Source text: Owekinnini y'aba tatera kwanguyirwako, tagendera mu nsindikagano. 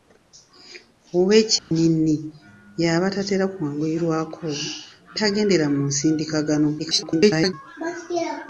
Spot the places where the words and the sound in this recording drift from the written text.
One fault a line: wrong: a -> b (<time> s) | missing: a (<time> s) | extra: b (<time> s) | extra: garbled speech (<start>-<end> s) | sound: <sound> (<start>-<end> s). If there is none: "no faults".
sound: dropout (1.6-1.7 s)
extra: garbled speech (6.8-7.5 s)